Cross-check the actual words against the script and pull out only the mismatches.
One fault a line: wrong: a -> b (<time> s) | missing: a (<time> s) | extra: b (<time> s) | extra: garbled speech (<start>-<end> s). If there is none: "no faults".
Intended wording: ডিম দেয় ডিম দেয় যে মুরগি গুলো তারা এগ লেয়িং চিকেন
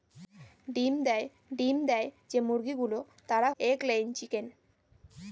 no faults